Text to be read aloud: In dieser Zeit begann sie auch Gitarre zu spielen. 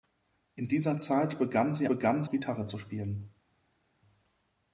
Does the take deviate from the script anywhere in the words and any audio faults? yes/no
yes